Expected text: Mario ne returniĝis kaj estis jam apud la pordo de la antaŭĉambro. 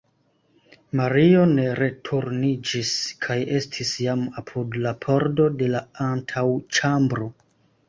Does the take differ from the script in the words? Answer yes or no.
no